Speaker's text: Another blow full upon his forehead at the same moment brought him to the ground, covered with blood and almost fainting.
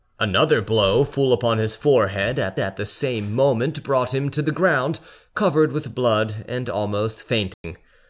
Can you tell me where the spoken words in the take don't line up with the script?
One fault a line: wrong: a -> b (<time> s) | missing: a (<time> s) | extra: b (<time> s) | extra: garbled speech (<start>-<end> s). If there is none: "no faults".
extra: at (2.6 s)